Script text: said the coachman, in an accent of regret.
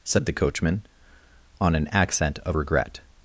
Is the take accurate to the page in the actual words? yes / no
no